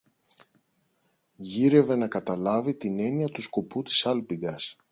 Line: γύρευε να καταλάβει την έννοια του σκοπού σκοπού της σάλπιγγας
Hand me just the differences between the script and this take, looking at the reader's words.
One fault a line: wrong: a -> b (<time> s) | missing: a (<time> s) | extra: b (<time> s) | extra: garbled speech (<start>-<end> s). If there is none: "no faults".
missing: σκοπού (3.8 s)